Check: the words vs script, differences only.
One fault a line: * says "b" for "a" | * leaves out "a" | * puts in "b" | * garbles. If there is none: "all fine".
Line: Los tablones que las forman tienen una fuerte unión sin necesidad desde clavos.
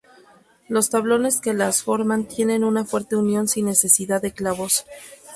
* says "de" for "desde"